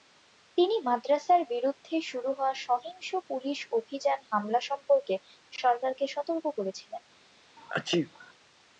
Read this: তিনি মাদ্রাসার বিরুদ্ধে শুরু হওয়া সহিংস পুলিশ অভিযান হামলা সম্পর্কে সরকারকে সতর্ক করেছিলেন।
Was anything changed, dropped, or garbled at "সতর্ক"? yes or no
no